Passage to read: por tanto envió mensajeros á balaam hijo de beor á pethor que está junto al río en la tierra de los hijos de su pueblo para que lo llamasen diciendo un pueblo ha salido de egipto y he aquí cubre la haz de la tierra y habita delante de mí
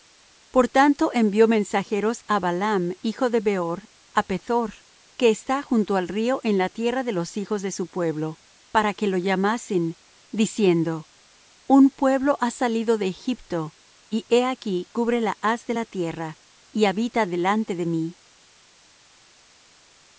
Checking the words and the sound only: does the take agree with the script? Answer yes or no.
yes